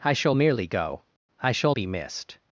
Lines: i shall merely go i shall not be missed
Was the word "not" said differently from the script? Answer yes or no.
yes